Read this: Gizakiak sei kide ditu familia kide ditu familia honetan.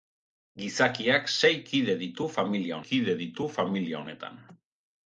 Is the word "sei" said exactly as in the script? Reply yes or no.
yes